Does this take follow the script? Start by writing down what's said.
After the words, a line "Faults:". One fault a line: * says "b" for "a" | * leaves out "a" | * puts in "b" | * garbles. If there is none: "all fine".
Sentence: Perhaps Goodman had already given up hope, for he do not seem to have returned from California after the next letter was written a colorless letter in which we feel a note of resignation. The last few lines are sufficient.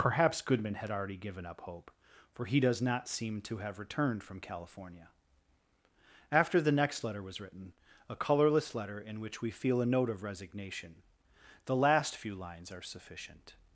Perhaps Goodman had already given up hope, for he does not seem to have returned from California after the next letter was written a colorless letter in which we feel a note of resignation. The last few lines are sufficient.
Faults:
* says "does" for "do"